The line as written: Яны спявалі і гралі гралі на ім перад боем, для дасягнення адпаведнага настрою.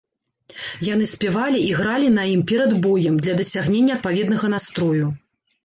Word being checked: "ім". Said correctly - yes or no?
yes